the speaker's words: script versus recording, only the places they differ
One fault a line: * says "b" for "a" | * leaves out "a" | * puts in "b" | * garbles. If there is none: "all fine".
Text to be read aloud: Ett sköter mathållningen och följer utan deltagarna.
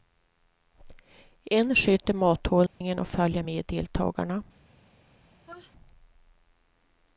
* says "En" for "Ett"
* says "med" for "utan"